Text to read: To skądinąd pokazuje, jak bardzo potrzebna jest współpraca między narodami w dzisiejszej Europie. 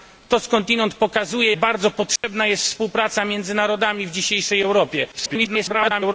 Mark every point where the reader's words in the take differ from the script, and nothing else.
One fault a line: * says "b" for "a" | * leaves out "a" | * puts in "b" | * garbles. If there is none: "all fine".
* leaves out "jak"
* garbles